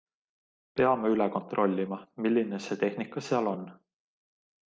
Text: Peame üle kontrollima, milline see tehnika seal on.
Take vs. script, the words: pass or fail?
pass